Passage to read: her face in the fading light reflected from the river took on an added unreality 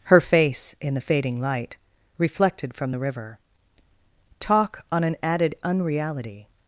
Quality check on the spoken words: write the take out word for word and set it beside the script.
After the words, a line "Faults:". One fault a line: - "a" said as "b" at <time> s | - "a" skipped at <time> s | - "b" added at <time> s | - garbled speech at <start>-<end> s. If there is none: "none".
her face in the fading light reflected from the river talk on an added unreality
Faults:
- "took" said as "talk" at 4.4 s